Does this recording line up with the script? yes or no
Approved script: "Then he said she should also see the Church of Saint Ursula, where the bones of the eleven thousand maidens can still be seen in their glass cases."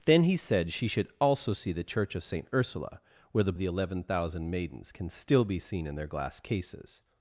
no